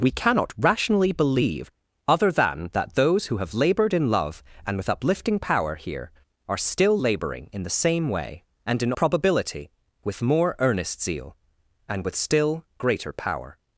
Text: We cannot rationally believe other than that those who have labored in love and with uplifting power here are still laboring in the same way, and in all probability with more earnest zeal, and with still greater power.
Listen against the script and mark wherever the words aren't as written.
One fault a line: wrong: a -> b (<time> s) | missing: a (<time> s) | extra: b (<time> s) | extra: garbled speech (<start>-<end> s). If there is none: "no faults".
missing: all (8.9 s)